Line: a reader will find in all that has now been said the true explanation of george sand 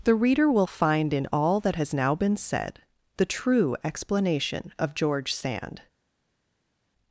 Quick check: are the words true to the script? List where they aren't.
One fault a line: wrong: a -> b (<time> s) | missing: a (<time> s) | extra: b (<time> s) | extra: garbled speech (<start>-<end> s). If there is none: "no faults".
wrong: a -> the (0.0 s)